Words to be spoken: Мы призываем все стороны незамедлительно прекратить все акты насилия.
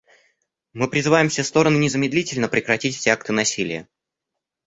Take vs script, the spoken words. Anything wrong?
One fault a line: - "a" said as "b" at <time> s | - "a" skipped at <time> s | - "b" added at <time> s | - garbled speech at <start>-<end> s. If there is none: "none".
none